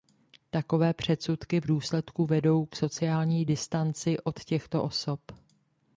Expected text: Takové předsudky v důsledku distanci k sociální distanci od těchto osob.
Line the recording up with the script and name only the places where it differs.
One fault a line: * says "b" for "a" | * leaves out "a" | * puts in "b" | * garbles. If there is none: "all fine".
* says "vedou" for "distanci"